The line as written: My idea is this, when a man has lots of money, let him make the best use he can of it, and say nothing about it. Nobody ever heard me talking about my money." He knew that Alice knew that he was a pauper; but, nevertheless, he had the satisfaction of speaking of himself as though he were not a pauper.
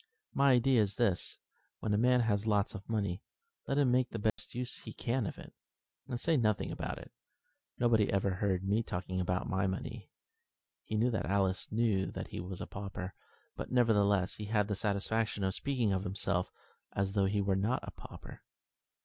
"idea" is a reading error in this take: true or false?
false